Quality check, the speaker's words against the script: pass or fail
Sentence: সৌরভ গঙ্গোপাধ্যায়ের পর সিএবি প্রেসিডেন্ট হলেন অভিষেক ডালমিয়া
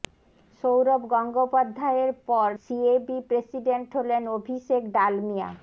pass